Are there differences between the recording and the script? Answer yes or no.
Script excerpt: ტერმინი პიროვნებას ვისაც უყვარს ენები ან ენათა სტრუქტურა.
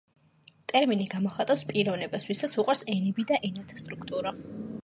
yes